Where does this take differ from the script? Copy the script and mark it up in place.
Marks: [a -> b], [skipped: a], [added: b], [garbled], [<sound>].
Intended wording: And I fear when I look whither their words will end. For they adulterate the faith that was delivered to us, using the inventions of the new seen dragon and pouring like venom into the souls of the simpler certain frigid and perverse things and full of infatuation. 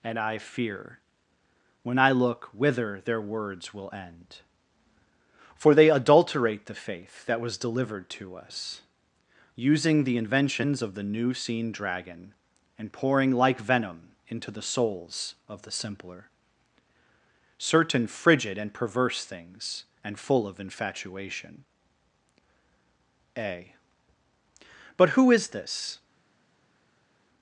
And I fear when I look whither their words will end. For they adulterate the faith that was delivered to us, using the inventions of the new seen dragon and pouring like venom into the souls of the simpler certain frigid and perverse things and full of infatuation. [added: A But who is this]